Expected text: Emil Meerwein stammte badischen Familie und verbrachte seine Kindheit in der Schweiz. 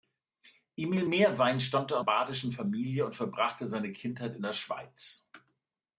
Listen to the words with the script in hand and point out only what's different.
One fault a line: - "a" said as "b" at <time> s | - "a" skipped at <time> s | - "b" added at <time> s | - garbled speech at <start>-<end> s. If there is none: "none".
none